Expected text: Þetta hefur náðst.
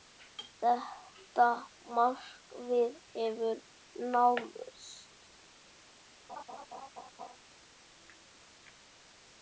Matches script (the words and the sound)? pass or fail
fail